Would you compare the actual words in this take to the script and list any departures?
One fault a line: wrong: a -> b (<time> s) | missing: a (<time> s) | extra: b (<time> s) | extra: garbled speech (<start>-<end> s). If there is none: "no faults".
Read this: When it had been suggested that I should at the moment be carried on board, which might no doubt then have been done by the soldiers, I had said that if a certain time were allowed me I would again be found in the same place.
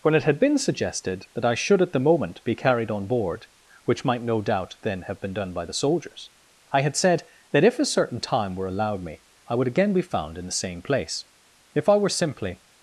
extra: If I were simply (11.7 s)